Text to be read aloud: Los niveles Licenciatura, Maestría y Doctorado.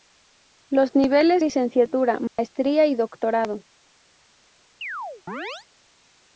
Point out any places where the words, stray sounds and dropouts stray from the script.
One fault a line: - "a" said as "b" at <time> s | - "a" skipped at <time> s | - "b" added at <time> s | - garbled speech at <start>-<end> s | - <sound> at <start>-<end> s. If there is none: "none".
- dropout at 2.3-2.4 s
- chirp at 4.8-5.7 s